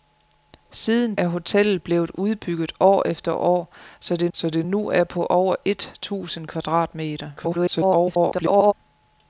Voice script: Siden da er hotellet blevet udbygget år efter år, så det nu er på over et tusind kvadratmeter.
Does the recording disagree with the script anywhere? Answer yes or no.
yes